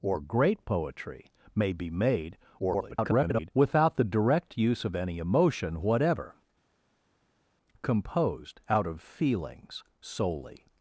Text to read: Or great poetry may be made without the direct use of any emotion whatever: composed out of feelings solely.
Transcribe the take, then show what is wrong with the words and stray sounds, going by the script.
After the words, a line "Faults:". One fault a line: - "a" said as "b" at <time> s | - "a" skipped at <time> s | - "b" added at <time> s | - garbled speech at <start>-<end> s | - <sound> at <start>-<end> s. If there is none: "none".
Or great poetry may be made [garbled] without the direct use of any emotion whatever: composed out of feelings solely.
Faults:
- garbled speech at 2.6-3.5 s